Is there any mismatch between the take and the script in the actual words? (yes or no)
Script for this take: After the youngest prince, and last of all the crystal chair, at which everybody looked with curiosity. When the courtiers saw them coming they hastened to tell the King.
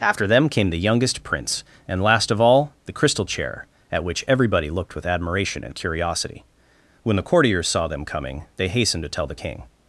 yes